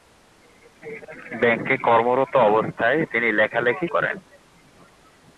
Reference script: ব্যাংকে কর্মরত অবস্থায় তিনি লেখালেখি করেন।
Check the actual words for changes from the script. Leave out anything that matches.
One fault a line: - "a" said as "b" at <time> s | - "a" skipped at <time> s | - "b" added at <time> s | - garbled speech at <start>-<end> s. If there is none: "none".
none